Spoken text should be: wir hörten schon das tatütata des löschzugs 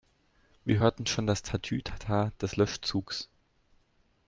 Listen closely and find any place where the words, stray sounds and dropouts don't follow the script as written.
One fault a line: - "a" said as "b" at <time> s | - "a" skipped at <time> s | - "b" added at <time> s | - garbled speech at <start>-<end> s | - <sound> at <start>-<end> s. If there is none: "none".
none